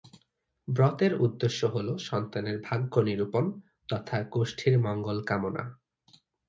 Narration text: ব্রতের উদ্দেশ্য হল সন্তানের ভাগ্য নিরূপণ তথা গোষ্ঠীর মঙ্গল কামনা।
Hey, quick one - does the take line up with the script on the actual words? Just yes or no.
yes